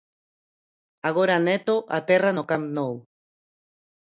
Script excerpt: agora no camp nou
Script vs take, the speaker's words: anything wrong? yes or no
yes